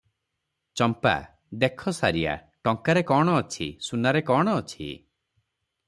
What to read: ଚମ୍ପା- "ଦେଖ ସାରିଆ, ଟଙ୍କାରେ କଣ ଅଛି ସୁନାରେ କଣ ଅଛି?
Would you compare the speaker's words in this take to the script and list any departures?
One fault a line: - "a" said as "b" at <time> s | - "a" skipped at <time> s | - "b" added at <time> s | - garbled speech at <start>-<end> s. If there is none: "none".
none